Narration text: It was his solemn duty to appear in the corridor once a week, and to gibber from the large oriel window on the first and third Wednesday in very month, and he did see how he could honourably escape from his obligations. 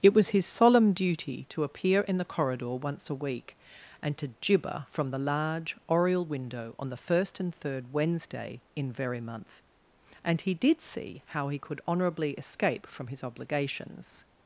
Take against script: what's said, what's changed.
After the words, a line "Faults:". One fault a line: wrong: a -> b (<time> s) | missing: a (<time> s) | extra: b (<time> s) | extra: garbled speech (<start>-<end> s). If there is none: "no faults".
It was his solemn duty to appear in the corridor once a week, and to gibber from the large oriel window on the first and third Wednesday in very month, and he did see how he could honourably escape from his obligations.
Faults:
no faults